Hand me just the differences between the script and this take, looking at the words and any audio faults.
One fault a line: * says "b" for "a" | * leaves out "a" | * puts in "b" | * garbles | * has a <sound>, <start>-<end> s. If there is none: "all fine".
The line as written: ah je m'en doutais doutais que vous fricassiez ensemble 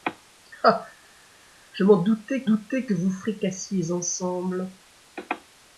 all fine